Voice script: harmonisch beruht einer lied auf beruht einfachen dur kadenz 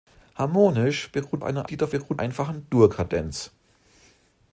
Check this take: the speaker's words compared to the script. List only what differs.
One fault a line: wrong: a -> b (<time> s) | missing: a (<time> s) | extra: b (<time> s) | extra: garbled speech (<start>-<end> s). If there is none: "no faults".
no faults